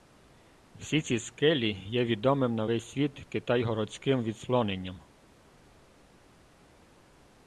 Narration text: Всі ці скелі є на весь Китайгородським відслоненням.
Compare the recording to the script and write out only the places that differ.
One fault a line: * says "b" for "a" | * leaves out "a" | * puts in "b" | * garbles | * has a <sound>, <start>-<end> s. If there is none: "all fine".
* puts in "відомим"
* puts in "світ"